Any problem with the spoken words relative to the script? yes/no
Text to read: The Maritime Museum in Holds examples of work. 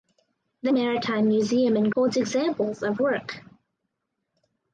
no